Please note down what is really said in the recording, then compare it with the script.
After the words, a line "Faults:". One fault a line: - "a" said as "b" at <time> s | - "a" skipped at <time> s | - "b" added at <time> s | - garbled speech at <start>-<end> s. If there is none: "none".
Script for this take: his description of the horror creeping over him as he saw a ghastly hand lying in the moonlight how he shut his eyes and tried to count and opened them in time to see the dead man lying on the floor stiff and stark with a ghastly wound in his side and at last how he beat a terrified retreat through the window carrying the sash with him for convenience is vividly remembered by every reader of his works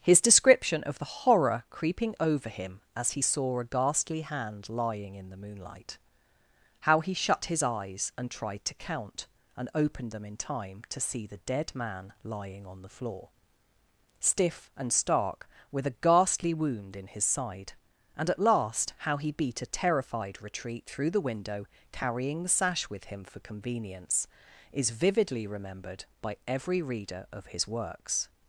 his description of the horror creeping over him as he saw a ghastly hand lying in the moonlight how he shut his eyes and tried to count and opened them in time to see the dead man lying on the floor stiff and stark with a ghastly wound in his side and at last how he beat a terrified retreat through the window carrying the sash with him for convenience is vividly remembered by every reader of his works
Faults:
none